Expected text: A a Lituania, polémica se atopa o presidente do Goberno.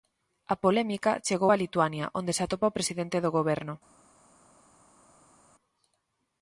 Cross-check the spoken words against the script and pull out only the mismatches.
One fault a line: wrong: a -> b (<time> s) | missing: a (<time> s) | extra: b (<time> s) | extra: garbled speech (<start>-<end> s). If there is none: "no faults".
extra: polémica chegou (0.6 s)
wrong: polémica -> onde (2.2 s)